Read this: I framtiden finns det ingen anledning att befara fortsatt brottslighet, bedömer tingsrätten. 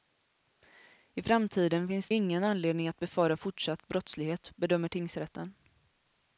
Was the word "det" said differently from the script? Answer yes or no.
yes